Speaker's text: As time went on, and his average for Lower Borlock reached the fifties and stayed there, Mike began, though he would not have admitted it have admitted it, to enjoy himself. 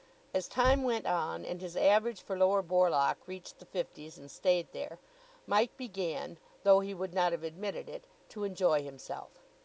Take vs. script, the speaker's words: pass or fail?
fail